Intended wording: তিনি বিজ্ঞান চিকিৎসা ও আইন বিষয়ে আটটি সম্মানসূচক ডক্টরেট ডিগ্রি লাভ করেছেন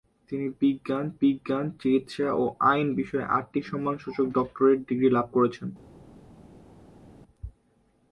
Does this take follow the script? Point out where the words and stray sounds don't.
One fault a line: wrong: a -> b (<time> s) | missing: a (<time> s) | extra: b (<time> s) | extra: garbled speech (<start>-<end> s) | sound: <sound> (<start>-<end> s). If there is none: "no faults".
extra: বিজ্ঞান (1.2 s)